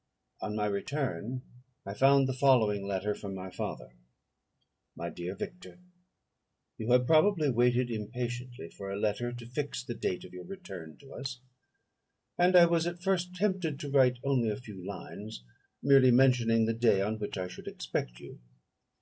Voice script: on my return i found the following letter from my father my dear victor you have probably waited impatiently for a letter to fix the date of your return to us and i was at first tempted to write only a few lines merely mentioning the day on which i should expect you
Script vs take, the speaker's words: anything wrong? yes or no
no